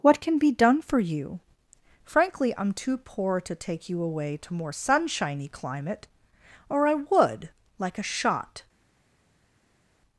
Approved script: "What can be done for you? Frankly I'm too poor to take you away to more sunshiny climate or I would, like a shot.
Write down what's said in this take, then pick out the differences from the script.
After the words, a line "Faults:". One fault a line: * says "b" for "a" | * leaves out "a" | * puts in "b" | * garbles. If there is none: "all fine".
"What can be done for you? Frankly I'm too poor to take you away to more sunshiny climate or I would, like a shot.
Faults:
all fine